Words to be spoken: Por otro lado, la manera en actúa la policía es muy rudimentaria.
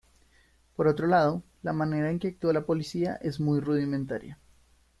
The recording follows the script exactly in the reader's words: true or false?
false